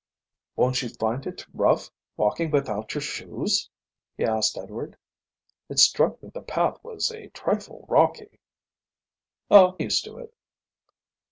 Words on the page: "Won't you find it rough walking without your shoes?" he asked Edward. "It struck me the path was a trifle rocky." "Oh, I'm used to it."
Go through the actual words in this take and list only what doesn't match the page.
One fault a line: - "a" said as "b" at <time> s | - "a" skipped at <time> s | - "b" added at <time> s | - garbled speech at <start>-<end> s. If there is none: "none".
- "I'm" skipped at 9.8 s